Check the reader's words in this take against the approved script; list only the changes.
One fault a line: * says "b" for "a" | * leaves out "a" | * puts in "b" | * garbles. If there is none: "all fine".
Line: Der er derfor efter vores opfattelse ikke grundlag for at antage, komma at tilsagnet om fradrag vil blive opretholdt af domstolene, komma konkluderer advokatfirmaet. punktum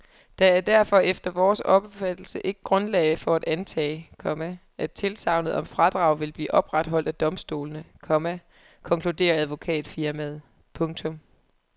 all fine